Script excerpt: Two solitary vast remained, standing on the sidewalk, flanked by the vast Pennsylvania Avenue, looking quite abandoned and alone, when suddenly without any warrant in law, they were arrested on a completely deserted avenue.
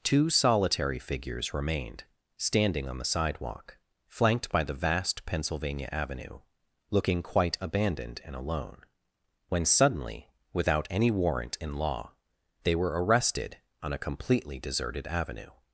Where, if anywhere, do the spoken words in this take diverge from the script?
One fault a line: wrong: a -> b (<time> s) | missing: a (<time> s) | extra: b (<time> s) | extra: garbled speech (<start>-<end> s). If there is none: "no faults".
wrong: vast -> figures (1.0 s)